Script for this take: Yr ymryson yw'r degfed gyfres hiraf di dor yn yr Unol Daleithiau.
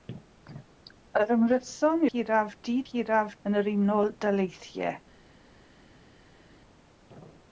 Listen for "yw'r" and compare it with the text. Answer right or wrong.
wrong